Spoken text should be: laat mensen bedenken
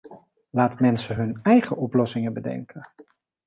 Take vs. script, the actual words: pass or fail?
fail